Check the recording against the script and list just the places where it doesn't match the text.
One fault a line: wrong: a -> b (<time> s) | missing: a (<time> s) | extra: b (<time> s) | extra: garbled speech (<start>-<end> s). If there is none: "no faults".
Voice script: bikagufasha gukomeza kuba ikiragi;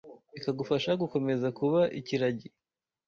no faults